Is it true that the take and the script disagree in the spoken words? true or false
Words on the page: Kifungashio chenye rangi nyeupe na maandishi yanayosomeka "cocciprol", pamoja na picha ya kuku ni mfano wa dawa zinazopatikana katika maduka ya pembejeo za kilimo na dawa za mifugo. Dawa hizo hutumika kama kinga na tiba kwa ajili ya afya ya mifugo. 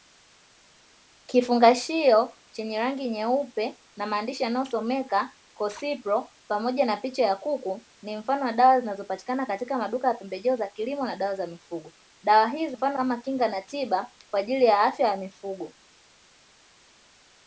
true